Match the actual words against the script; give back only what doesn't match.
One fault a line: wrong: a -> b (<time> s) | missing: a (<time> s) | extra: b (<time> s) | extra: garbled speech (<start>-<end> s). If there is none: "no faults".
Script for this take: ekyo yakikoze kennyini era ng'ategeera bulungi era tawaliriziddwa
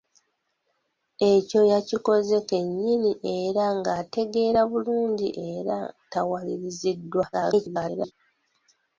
extra: garbled speech (7.3-8.1 s)